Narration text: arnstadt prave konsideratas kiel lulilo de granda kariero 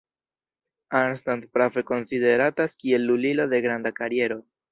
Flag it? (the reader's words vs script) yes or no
no